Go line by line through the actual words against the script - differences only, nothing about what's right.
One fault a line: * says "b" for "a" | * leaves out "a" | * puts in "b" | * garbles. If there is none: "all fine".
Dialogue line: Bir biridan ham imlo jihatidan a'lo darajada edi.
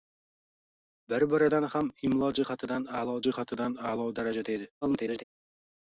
* puts in "jihatidan a'lo"
* garbles